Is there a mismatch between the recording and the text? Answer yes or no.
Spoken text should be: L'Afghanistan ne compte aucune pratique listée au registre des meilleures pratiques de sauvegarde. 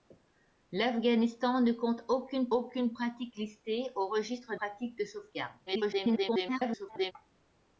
yes